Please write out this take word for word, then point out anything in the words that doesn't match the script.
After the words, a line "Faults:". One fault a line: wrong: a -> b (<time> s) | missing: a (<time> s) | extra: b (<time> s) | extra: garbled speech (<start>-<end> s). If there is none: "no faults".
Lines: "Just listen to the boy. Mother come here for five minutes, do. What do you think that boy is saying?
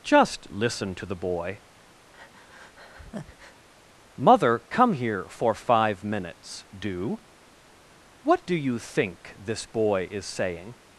"Just listen to the boy. Mother come here for five minutes, do. What do you think this boy is saying?
Faults:
wrong: that -> this (9.4 s)